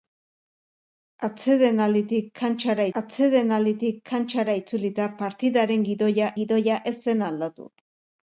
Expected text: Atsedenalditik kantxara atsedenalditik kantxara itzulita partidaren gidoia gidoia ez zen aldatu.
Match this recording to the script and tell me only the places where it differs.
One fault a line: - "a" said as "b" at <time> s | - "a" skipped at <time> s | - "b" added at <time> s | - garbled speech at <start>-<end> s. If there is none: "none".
none